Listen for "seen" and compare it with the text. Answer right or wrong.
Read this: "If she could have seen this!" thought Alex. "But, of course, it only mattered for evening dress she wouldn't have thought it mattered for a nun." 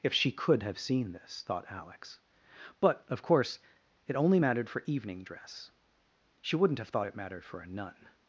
right